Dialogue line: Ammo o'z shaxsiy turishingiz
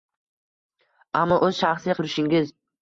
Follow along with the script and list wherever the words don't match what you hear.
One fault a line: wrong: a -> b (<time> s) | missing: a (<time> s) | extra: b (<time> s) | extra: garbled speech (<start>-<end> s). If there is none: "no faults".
no faults